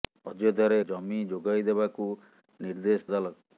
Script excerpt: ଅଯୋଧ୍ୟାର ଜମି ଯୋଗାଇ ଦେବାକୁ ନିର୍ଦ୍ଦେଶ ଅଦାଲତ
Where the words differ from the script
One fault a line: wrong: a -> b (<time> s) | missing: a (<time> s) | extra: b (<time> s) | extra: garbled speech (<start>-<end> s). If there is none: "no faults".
no faults